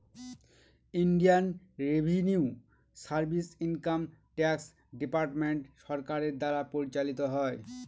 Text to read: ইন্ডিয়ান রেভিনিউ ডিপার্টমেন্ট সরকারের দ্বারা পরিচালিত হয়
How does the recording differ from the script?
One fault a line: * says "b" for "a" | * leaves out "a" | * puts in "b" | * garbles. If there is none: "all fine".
* puts in "সার্ভিস ইনকাম ট্যাক্স"